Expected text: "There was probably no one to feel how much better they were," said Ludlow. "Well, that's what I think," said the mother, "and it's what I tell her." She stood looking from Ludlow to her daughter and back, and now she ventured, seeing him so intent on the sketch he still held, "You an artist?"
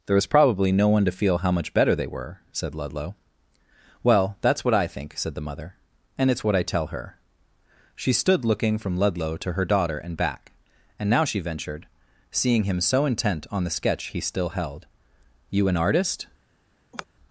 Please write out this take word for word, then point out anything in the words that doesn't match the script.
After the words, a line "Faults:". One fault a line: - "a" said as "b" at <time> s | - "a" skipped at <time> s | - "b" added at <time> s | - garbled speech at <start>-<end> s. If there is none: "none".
"There was probably no one to feel how much better they were," said Ludlow. "Well, that's what I think," said the mother, "and it's what I tell her." She stood looking from Ludlow to her daughter and back, and now she ventured, seeing him so intent on the sketch he still held, "You an artist?"
Faults:
none